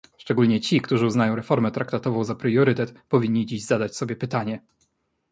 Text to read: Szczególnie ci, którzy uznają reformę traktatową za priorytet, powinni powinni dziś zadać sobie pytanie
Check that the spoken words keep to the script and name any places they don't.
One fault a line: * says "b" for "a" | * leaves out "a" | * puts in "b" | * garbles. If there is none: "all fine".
* leaves out "powinni"